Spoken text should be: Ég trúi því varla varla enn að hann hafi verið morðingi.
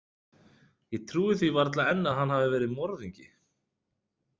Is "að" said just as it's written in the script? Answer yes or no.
yes